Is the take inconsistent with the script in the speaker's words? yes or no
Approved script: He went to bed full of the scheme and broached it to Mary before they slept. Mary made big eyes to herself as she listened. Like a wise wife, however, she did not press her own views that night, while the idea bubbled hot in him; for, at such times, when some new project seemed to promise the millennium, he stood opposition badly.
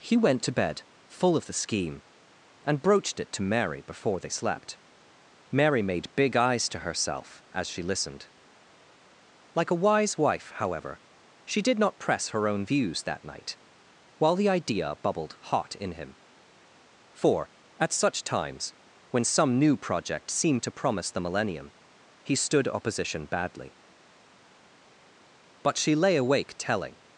yes